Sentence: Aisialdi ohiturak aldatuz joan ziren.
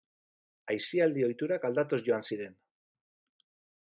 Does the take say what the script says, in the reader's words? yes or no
yes